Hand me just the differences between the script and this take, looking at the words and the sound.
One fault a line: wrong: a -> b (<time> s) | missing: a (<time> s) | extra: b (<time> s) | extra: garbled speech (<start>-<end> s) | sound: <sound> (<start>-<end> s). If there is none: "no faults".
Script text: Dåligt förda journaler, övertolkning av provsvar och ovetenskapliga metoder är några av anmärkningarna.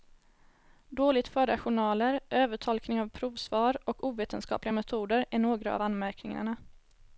no faults